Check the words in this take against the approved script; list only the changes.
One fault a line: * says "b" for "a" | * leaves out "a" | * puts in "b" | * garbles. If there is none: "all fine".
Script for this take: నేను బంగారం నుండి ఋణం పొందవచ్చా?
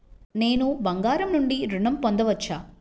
all fine